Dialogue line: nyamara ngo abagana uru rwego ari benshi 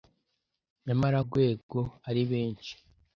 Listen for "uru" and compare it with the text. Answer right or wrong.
wrong